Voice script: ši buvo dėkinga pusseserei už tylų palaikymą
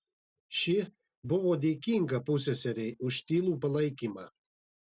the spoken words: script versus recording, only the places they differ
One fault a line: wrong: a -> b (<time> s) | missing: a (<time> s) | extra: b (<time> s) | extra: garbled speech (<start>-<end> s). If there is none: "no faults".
no faults